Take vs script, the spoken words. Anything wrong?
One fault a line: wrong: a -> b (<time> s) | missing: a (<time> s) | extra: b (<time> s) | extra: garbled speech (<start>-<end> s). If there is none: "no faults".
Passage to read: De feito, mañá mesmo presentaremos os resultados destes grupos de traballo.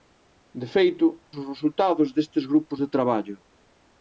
missing: mañá mesmo presentaremos (1.1 s)